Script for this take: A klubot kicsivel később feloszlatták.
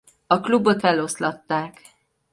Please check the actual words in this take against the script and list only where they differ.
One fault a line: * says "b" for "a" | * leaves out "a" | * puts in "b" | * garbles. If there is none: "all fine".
* leaves out "kicsivel később"